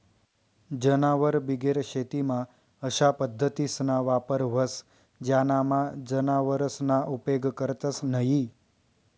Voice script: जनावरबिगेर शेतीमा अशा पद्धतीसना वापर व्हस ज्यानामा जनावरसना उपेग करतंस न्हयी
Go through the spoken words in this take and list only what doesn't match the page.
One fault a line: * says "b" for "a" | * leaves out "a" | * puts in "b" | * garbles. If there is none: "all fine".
all fine